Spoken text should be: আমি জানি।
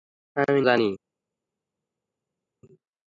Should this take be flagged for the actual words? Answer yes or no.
no